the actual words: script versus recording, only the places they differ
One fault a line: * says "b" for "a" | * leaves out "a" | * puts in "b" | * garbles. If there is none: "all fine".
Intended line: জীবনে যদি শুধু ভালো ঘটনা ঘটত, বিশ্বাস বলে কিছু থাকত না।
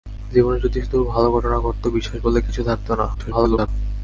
* garbles